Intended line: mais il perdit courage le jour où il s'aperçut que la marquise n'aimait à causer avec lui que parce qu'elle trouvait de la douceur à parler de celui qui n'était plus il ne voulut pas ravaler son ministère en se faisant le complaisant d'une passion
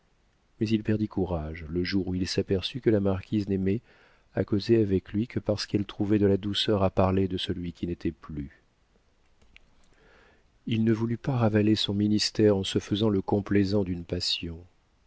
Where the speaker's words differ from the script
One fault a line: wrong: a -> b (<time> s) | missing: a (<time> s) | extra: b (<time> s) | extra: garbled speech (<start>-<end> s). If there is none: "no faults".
no faults